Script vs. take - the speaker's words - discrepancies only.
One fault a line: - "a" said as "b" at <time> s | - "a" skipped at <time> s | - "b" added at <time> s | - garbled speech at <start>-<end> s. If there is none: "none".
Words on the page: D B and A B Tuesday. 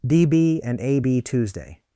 none